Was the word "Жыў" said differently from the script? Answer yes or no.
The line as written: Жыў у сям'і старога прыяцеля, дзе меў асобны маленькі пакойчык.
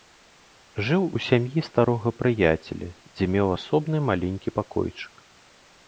no